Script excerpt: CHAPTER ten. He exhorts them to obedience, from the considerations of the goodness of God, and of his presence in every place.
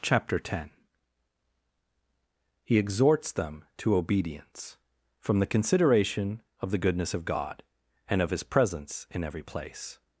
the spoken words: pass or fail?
fail